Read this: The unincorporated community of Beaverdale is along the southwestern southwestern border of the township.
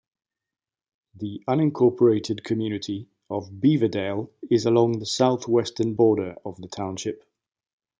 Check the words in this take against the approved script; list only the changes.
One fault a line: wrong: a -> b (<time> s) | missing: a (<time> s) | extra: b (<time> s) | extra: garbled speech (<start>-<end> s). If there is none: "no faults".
missing: southwestern (5.9 s)